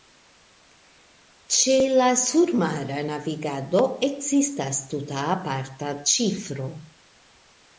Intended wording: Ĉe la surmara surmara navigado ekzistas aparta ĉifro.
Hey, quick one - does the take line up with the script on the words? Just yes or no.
no